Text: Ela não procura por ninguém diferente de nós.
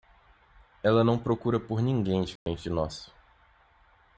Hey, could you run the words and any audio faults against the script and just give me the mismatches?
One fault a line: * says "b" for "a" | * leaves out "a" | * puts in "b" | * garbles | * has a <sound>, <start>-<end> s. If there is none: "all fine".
* has a dropout, 2.4-2.5 s